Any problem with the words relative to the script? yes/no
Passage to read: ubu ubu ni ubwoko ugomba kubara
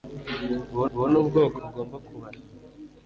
no